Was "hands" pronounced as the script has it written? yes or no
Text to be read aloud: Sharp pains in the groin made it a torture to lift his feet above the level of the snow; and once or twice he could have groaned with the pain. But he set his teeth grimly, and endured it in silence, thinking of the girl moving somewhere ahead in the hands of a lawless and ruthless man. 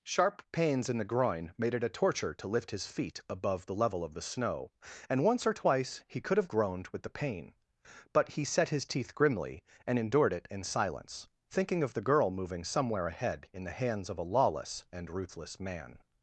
yes